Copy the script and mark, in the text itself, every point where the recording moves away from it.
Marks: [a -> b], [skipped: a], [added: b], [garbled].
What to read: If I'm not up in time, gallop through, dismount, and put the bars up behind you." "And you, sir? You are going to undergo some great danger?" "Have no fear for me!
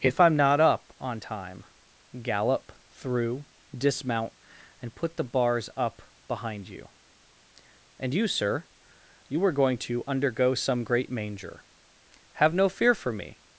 If I'm not up [in -> on] time, gallop through, dismount, and put the bars up behind you." "And you, sir? You are going to undergo some great [danger?" -> manger] "Have no fear for me!